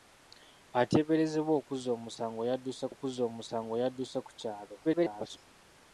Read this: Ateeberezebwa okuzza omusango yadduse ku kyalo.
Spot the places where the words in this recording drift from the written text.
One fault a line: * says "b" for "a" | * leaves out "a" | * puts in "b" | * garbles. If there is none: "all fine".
* puts in "okuzza omusango yadduse"
* garbles